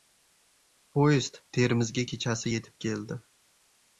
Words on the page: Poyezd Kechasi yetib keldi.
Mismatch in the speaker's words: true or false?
true